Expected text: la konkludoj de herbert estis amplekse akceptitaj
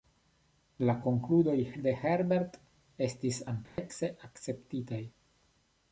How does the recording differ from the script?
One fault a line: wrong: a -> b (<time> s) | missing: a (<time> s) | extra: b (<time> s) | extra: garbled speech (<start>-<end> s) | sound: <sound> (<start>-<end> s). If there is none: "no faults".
sound: dropout (3.6-3.8 s)